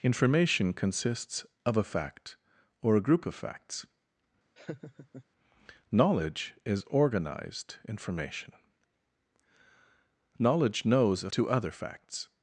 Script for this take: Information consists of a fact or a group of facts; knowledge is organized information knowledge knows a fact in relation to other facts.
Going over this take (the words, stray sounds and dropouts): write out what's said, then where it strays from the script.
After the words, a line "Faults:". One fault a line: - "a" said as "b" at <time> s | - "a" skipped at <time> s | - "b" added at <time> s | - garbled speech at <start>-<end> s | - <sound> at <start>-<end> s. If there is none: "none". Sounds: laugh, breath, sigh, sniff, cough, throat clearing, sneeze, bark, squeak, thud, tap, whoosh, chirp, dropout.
Information consists of a fact or a group of facts; knowledge is organized information knowledge knows a to other facts.
Faults:
- laugh at 4.6-5.2 s
- "fact in relation" skipped at 11.3 s